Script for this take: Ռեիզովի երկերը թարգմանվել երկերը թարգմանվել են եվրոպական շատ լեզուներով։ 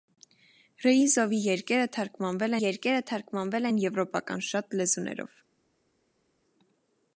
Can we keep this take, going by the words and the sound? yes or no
yes